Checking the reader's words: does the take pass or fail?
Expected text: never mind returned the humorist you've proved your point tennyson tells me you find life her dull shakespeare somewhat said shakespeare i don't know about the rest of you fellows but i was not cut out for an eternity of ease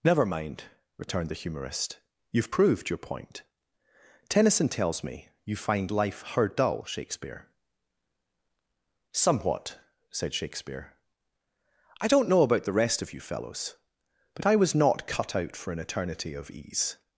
pass